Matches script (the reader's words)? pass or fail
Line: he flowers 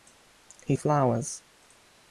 pass